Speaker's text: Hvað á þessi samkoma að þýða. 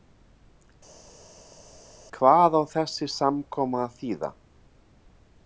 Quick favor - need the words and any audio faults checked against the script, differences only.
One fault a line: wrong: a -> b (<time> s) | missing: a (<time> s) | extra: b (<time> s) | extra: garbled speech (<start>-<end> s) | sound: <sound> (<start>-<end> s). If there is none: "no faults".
no faults